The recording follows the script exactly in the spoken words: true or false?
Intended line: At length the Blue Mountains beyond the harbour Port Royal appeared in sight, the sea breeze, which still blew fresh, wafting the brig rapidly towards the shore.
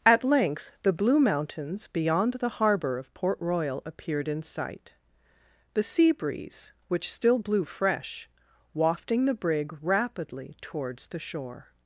false